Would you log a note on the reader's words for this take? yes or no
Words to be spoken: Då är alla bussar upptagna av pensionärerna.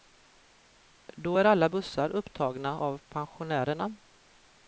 no